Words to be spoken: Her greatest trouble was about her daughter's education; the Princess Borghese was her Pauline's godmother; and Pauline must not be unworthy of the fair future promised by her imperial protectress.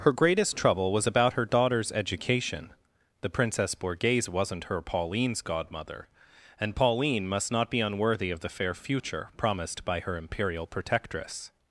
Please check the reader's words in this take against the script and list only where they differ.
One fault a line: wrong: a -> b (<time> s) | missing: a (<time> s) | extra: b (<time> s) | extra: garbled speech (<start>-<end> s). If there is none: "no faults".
wrong: was -> wasn't (4.3 s)